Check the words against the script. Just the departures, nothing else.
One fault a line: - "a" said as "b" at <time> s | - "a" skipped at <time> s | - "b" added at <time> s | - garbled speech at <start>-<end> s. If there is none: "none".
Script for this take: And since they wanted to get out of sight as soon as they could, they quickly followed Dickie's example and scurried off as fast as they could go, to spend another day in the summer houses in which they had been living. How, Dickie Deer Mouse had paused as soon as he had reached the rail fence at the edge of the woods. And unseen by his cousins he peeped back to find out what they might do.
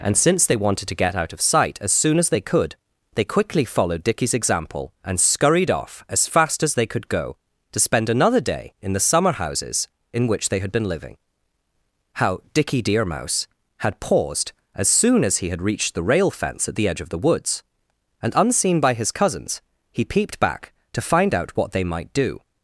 none